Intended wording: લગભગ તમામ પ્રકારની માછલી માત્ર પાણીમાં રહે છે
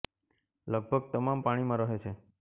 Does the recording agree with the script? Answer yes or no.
no